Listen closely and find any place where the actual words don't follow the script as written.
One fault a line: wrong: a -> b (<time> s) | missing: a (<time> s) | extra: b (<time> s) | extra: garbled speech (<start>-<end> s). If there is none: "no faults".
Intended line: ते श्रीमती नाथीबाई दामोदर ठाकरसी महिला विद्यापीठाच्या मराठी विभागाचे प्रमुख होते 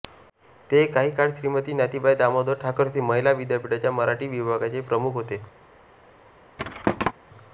extra: काही काळ (0.9 s)